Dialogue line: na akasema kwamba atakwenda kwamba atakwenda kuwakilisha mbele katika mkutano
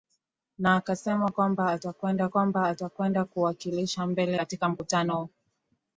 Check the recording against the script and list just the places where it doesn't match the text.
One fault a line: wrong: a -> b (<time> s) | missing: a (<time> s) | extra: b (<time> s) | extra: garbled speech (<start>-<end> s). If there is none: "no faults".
no faults